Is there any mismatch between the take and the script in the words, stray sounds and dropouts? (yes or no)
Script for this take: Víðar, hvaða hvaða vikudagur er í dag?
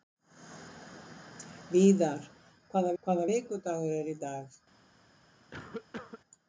yes